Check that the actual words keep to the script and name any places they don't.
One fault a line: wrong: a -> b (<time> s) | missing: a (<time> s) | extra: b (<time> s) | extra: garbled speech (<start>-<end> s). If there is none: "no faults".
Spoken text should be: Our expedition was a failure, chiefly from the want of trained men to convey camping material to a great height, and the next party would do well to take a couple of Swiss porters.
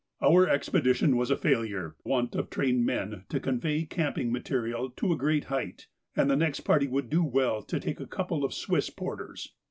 missing: chiefly from the (1.9 s)